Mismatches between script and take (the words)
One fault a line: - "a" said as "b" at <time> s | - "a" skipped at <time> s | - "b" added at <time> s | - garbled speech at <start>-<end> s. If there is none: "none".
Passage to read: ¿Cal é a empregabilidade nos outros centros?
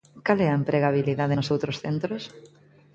none